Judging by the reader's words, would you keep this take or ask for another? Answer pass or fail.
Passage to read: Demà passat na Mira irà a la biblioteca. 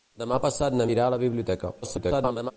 fail